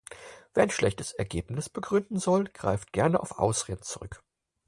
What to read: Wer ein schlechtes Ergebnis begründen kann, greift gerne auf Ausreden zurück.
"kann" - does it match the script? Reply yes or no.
no